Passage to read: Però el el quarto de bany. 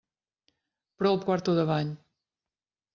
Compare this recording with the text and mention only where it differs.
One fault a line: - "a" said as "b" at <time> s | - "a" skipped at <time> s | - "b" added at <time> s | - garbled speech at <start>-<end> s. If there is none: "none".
none